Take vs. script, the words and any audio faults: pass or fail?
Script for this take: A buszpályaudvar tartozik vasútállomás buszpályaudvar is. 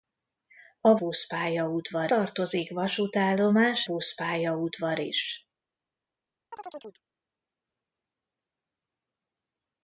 fail